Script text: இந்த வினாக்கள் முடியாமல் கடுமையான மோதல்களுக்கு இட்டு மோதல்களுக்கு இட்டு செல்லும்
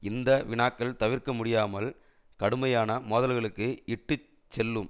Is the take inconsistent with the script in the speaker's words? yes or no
yes